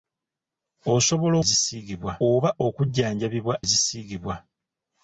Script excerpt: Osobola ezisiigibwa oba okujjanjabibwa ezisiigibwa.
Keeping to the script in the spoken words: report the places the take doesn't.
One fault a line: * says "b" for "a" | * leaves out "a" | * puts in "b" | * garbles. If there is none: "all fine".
all fine